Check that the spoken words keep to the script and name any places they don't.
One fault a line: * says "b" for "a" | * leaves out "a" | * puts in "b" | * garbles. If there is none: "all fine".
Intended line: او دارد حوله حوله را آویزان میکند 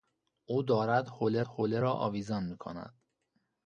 all fine